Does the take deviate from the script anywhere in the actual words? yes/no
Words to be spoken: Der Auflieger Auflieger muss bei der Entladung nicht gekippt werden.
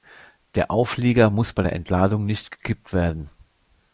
yes